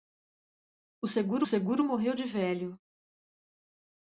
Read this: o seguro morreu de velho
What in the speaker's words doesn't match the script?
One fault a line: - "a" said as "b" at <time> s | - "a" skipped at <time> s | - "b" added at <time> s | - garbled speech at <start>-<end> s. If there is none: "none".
- "seguro" added at 1.4 s